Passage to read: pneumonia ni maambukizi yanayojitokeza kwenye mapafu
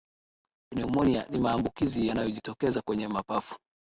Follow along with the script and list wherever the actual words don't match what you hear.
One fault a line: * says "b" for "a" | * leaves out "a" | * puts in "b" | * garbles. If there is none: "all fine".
all fine